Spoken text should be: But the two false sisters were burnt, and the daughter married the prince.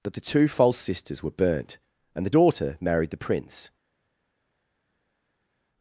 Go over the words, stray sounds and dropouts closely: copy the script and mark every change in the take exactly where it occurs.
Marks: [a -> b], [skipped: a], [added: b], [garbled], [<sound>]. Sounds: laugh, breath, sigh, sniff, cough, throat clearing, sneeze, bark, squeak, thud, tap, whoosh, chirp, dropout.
[But -> That] the two false sisters were burnt, and the daughter married the prince.